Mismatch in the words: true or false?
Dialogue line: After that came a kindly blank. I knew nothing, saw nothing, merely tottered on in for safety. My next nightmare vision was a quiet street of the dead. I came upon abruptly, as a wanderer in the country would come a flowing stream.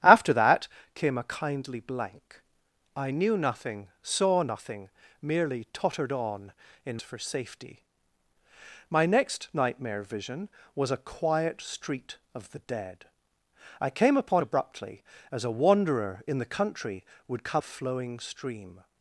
false